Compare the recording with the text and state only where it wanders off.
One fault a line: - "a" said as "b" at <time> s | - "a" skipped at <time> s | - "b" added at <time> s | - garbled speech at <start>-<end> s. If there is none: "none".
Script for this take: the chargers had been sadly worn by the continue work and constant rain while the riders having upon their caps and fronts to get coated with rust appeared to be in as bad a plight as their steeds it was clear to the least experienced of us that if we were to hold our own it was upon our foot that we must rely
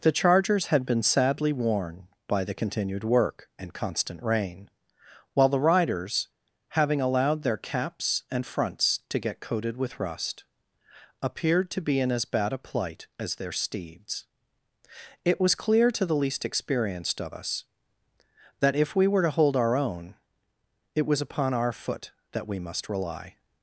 - "continue" said as "continued" at 2.5 s
- "upon" said as "allowed" at 7.0 s